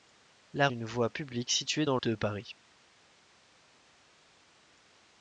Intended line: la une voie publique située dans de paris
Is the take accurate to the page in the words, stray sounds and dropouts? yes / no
yes